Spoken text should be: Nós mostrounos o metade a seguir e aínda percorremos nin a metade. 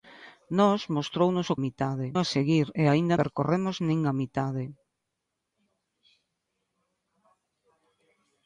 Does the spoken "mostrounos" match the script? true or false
true